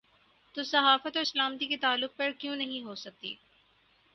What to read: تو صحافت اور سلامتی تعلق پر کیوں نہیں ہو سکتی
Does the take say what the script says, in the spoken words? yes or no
no